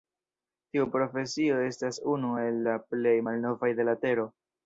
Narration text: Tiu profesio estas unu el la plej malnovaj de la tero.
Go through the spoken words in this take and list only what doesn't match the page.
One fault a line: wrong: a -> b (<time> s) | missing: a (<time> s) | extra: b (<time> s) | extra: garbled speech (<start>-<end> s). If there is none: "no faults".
no faults